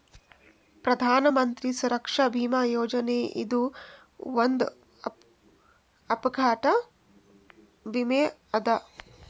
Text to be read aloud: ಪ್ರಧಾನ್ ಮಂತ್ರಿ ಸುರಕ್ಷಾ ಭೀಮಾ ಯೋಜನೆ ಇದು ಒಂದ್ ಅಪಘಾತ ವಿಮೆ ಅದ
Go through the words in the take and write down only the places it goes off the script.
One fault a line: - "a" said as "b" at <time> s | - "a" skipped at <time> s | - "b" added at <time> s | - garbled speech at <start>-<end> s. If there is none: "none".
none